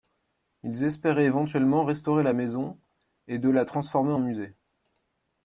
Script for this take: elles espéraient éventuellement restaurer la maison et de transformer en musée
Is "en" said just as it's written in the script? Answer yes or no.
yes